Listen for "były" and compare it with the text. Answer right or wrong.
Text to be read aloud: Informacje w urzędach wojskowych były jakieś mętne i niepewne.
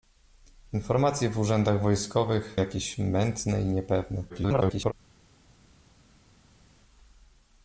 wrong